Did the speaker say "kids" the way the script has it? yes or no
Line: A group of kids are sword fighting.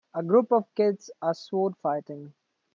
yes